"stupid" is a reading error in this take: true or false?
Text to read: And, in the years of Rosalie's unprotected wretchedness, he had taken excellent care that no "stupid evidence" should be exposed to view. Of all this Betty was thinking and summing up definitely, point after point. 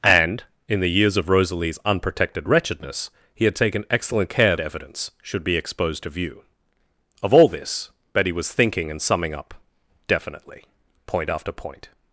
true